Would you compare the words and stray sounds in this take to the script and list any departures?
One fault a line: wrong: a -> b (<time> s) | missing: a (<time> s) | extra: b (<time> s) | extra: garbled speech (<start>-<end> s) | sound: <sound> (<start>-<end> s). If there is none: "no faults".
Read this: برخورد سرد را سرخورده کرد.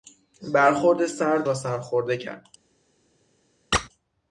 sound: squeak (3.7-3.9 s)